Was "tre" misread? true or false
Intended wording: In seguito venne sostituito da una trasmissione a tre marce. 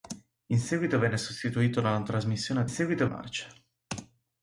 true